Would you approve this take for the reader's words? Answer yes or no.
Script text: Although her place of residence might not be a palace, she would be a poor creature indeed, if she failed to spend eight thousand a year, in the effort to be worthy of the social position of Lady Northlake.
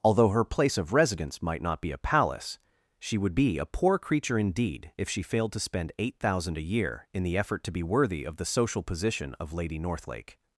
yes